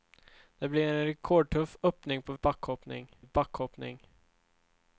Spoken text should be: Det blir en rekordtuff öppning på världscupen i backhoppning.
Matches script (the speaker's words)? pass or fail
fail